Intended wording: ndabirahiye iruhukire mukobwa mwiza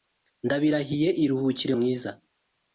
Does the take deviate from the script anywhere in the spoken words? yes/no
yes